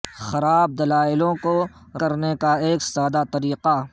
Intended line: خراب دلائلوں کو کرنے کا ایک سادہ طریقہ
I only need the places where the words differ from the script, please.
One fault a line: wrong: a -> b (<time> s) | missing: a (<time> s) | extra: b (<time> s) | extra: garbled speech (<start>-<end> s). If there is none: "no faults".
no faults